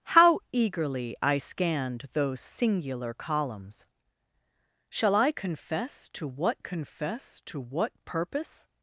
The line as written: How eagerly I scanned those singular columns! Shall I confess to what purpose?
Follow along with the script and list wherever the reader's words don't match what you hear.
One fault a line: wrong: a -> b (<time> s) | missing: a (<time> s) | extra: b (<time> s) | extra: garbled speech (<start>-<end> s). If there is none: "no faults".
extra: confess to what (6.6 s)